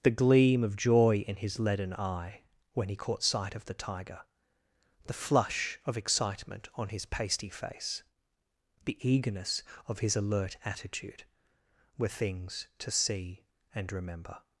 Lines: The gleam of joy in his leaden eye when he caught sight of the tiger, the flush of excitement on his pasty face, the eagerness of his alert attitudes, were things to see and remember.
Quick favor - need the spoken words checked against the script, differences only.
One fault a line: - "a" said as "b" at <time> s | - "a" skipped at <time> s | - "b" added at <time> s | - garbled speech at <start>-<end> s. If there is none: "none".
- "attitudes" said as "attitude" at 10.7 s